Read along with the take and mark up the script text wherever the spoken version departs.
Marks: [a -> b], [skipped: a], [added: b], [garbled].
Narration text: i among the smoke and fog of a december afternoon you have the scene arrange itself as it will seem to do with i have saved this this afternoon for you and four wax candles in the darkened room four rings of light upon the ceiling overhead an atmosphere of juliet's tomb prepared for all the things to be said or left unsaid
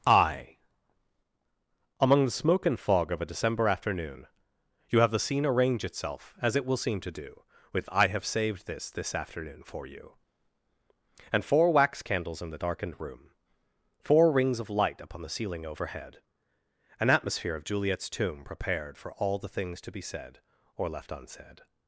i among the smoke and fog of a december afternoon you have the scene arrange itself as it will seem to do with i have saved this this afternoon for you and four wax candles in the darkened room four rings of light upon the ceiling overhead an atmosphere of juliet's tomb prepared for all the things to be said or left unsaid